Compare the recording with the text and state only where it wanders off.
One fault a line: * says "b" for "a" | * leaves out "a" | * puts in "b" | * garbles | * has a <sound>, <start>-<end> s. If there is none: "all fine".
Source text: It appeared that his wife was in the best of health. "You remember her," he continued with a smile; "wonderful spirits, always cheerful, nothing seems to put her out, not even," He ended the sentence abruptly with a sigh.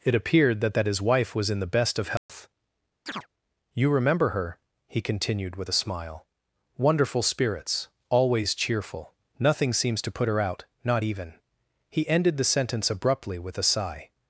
* puts in "that"
* has a dropout, 2.2-2.3 s
* has a chirp, 3.1-3.3 s